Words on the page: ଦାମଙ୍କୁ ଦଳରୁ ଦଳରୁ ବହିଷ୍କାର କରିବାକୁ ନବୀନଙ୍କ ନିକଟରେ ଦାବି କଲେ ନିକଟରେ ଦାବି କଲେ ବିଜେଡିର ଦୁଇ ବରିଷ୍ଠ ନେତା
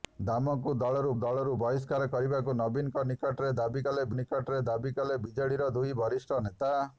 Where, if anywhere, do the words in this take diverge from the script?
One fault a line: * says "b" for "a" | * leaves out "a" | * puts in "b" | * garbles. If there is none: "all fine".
all fine